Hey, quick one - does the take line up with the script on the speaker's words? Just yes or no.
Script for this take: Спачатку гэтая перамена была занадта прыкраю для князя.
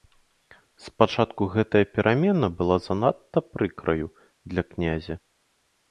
yes